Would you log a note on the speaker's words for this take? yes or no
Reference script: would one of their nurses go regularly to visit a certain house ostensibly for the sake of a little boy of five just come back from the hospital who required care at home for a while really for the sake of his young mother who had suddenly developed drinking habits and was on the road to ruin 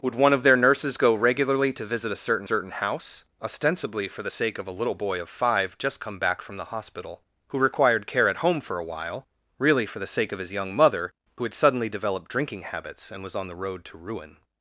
yes